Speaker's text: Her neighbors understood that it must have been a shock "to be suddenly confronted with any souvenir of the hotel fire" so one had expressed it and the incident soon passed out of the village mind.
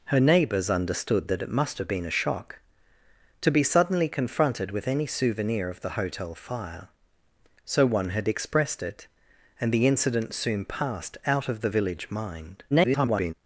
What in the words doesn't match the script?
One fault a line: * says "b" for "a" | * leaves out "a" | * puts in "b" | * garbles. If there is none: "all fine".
* garbles